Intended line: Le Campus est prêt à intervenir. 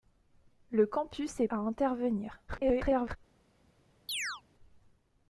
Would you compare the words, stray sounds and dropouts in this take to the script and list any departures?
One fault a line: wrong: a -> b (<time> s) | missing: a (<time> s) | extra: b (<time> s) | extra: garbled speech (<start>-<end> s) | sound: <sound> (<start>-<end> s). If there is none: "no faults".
missing: prêt (1.5 s)
extra: garbled speech (2.5-3.2 s)
sound: chirp (4.1-4.4 s)